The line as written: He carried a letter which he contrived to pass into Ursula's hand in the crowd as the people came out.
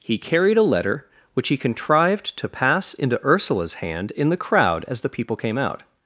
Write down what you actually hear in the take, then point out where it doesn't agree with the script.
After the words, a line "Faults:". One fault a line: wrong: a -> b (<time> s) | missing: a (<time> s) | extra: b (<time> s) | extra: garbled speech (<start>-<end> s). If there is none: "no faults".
He carried a letter which he contrived to pass into Ursula's hand in the crowd as the people came out.
Faults:
no faults